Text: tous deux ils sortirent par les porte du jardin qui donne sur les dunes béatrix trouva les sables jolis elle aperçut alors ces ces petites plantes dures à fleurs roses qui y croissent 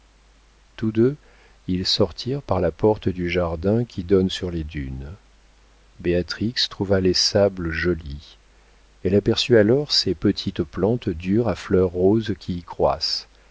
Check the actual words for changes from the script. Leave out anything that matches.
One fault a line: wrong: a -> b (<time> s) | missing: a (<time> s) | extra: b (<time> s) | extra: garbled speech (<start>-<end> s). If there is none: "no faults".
wrong: les -> la (2.6 s)
missing: ces (10.1 s)